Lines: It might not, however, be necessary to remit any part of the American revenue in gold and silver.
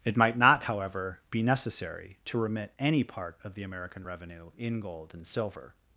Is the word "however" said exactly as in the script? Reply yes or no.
yes